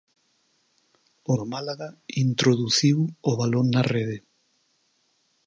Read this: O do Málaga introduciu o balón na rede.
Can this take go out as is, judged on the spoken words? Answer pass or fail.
pass